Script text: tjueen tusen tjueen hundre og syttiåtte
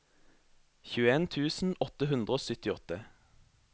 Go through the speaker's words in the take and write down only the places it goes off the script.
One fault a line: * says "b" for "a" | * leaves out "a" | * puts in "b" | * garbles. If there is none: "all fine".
* says "åtte" for "tjueen"